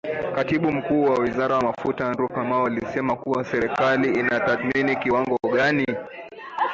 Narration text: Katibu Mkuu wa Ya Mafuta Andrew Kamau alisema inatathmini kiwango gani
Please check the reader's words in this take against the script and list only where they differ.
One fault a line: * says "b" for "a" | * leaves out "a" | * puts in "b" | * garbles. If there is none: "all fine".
* puts in "Wizara"
* puts in "kuwa serikali"